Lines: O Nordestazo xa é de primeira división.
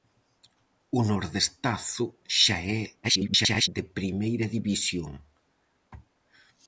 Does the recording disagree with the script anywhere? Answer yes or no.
yes